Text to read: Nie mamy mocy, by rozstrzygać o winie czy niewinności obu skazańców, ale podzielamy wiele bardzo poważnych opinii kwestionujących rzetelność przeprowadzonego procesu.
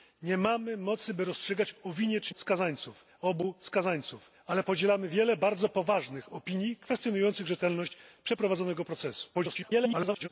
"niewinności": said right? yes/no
no